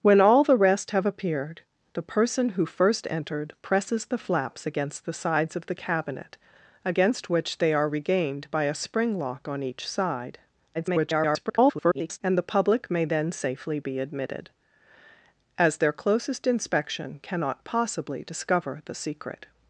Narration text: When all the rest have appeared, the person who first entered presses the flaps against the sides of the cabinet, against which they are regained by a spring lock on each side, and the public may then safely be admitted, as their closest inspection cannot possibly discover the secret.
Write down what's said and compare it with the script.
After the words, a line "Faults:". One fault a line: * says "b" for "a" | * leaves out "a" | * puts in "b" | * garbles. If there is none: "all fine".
When all the rest have appeared, the person who first entered presses the flaps against the sides of the cabinet, against which they are regained by a spring lock on each side, [garbled] and the public may then safely be admitted, as their closest inspection cannot possibly discover the secret.
Faults:
* garbles